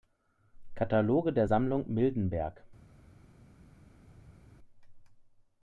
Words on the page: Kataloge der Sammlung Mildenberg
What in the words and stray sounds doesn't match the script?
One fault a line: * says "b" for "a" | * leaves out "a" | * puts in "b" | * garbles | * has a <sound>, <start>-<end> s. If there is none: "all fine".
all fine